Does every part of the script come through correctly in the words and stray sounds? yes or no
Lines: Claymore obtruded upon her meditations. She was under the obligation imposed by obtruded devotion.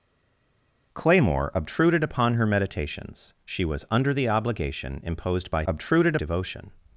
yes